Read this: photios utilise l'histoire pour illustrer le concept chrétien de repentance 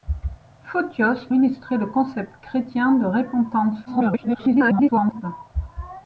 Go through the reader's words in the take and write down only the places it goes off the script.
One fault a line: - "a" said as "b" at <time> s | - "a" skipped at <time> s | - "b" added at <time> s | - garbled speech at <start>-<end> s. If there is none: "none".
- "utilise l'histoire pour" skipped at 1.3 s
- garbled speech at 3.9-5.2 s